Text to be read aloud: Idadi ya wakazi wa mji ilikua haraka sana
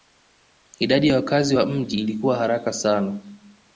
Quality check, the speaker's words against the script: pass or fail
pass